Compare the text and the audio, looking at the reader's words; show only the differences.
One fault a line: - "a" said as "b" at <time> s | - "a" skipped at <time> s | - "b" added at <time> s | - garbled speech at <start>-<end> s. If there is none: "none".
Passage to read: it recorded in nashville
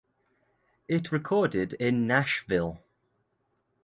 none